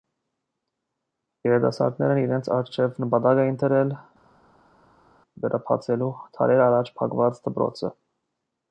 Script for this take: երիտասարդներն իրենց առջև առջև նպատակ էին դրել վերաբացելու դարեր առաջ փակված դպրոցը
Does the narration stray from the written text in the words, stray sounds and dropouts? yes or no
yes